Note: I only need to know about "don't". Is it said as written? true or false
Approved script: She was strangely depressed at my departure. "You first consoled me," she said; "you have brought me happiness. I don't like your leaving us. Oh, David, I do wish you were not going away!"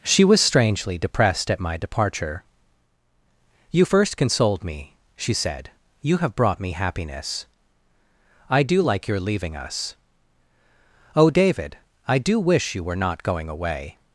false